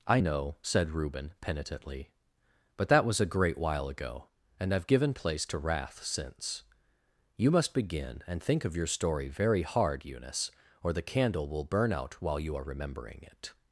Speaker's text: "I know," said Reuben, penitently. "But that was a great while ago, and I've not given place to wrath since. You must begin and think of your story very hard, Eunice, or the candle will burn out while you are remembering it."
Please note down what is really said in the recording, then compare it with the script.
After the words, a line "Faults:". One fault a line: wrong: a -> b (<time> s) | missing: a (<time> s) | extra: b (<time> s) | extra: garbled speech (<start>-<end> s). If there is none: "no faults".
"I know," said Reuben, penitently. "But that was a great while ago, and I've given place to wrath since. You must begin and think of your story very hard, Eunice, or the candle will burn out while you are remembering it."
Faults:
missing: not (4.9 s)